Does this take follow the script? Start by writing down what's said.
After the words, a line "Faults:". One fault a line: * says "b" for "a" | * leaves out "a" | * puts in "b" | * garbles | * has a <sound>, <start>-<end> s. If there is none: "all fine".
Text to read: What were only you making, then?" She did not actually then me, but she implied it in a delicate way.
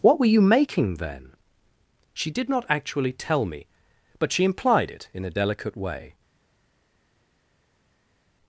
What were you making, then?" She did not actually tell me, but she implied it in a delicate way.
Faults:
* leaves out "only"
* says "tell" for "then"